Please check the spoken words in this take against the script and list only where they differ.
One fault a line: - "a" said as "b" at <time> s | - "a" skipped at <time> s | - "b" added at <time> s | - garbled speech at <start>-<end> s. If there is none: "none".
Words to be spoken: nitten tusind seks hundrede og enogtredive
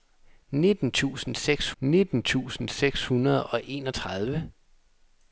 - "nitten tusind seks" added at 1.8 s